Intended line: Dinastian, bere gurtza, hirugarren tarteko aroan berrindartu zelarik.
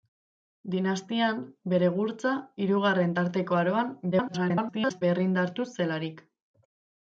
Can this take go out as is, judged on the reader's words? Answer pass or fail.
fail